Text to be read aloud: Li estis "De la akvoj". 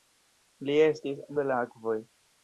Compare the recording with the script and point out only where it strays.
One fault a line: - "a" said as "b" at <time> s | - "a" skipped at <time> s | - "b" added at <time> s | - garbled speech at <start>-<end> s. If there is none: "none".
none